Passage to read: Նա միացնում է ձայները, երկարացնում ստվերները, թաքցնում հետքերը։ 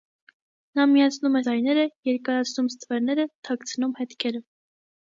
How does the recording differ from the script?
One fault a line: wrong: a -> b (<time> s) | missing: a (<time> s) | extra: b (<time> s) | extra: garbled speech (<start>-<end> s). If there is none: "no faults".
no faults